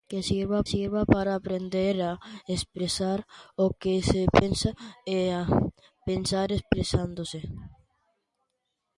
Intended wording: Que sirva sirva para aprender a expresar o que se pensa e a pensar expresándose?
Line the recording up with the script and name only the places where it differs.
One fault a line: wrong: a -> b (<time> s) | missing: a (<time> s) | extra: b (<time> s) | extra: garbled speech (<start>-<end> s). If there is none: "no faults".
no faults